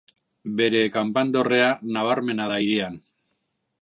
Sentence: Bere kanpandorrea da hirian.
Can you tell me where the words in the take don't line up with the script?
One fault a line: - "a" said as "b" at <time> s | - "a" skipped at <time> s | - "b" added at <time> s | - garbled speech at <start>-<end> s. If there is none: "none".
- "nabarmena" added at 2.0 s